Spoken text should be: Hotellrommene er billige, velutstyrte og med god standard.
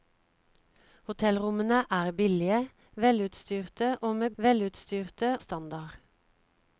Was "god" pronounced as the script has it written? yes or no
no